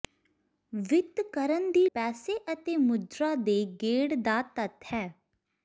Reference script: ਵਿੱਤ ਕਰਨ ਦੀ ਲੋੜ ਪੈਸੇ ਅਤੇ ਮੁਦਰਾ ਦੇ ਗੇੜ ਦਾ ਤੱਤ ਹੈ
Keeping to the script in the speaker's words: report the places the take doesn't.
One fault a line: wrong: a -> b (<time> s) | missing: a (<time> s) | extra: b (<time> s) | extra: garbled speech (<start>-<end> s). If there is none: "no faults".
missing: ਲੋੜ (1.9 s)